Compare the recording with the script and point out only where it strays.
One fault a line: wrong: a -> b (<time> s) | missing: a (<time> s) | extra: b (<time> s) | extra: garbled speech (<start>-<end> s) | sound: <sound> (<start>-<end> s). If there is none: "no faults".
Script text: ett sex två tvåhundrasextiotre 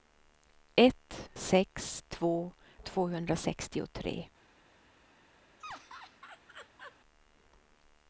sound: laugh (5.6-7.0 s)